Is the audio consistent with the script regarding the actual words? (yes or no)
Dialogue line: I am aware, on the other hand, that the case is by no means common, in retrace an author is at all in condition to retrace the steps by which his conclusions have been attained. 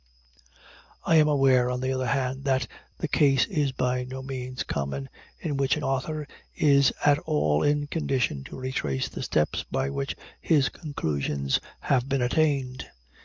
no